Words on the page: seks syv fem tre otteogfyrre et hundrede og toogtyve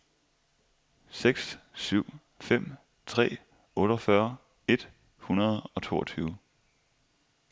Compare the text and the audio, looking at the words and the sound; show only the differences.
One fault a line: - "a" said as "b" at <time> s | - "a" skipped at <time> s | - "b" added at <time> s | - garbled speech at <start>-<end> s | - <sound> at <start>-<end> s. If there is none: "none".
none